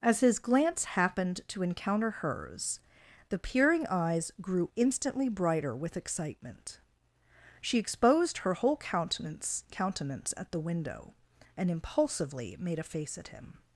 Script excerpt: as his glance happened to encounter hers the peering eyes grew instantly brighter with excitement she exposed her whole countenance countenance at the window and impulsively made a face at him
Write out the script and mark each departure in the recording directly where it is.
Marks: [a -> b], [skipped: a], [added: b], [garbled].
as his glance happened to encounter hers the peering eyes grew instantly brighter with excitement she exposed her whole countenance countenance at the window and impulsively made a face at him